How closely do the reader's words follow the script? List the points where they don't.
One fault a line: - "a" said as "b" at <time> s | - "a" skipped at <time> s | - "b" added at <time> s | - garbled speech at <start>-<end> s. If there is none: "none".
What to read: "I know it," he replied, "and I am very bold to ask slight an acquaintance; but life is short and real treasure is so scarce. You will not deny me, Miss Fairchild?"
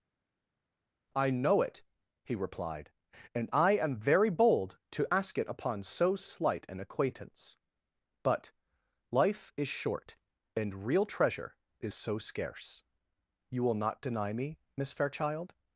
- "it upon so" added at 5.4 s